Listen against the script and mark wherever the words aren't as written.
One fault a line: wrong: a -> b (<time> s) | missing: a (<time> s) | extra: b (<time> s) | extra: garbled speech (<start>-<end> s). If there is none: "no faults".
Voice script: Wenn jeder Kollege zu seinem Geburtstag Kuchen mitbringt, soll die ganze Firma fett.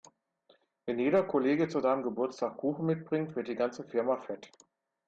wrong: soll -> wird (3.3 s)